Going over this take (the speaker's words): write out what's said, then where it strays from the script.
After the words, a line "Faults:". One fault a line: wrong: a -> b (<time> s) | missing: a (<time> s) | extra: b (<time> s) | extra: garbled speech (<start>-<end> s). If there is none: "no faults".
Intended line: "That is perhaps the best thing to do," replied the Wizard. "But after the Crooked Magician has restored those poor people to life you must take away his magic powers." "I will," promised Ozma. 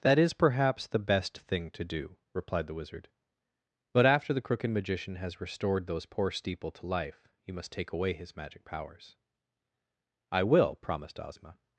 "That is perhaps the best thing to do," replied the Wizard. "But after the Crooked Magician has restored those poor steeple to life you must take away his magic powers." "I will," promised Ozma.
Faults:
wrong: people -> steeple (6.3 s)